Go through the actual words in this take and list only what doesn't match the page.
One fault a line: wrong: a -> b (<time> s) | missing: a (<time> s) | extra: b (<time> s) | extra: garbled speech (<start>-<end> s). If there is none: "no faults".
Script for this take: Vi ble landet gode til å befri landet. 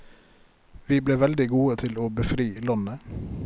wrong: landet -> veldig (1.2 s)